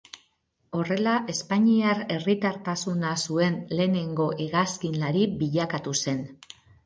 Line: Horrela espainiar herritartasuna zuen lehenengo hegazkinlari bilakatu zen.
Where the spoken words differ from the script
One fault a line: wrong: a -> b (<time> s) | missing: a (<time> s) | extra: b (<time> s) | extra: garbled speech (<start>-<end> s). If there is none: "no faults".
no faults